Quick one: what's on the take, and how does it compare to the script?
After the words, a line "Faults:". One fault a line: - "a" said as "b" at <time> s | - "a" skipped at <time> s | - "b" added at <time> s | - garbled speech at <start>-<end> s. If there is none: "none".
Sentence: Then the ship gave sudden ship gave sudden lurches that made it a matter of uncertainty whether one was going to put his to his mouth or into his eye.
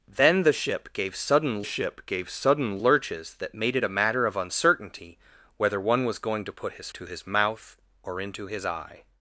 Then the ship gave sudden ship gave sudden lurches that made it a matter of uncertainty whether one was going to put his to his mouth or into his eye.
Faults:
none